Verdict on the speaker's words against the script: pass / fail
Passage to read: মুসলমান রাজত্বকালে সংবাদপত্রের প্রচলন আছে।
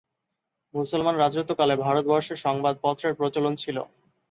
fail